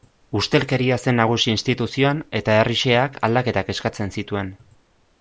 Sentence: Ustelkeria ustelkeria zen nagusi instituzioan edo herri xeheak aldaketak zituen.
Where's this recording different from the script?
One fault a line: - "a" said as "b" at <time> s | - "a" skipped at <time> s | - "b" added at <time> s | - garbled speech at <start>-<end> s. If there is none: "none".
- "ustelkeria" skipped at 1.0 s
- "edo" said as "eta" at 2.4 s
- "eskatzen" added at 3.8 s